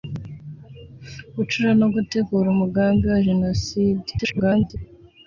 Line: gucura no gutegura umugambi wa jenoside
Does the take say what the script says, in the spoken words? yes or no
no